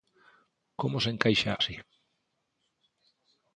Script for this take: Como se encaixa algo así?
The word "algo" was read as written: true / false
false